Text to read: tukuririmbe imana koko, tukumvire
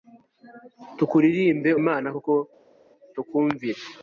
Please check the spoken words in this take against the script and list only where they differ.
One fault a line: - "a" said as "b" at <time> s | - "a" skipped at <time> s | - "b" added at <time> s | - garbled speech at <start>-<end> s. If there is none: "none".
none